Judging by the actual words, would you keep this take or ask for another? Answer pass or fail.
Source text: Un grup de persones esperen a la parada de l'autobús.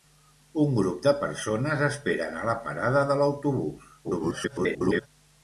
fail